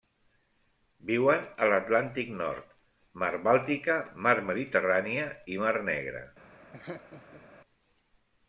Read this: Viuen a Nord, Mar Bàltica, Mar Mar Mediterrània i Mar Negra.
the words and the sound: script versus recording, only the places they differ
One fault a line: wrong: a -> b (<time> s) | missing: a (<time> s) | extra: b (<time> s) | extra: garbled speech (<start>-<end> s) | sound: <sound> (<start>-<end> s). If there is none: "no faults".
extra: l'Atlàntic (1.7 s)
missing: Mar (4.4 s)
sound: laugh (6.7-7.4 s)